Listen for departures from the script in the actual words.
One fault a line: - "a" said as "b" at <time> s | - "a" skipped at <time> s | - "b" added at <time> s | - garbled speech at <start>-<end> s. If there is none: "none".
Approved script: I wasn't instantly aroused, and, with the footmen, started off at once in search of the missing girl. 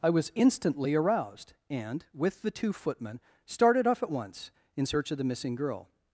- "wasn't" said as "was" at 0.1 s
- "two" added at 2.5 s